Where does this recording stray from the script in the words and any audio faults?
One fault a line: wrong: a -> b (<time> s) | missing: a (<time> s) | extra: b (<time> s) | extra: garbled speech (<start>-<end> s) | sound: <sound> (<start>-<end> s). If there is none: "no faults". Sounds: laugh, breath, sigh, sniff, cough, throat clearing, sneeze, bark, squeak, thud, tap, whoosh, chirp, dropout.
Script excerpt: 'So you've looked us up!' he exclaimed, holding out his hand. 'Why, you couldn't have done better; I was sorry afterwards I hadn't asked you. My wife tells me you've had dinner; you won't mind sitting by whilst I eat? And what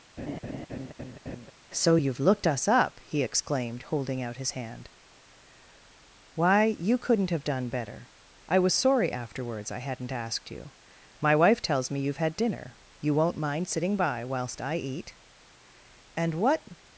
sound: laugh (0.2-1.5 s)